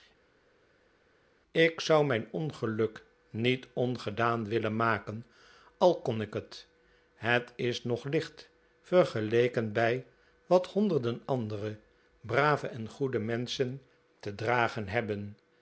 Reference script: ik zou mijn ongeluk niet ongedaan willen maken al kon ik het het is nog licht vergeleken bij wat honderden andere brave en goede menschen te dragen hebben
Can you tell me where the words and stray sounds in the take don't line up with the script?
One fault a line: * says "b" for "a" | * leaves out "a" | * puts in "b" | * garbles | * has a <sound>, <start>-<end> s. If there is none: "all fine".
all fine